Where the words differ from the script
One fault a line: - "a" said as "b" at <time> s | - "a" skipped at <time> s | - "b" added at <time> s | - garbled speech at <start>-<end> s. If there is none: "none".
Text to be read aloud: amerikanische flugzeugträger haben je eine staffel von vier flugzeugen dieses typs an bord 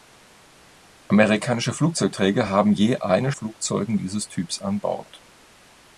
- "staffel von vier" skipped at 3.3 s